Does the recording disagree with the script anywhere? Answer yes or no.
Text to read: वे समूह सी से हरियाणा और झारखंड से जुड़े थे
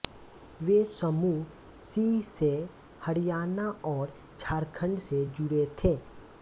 no